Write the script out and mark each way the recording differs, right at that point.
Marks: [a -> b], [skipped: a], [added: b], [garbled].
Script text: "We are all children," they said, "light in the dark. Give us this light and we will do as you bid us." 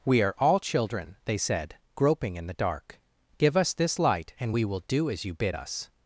"We are all children," they said, ["light -> groping] in the dark. Give us this light and we will do as you bid us."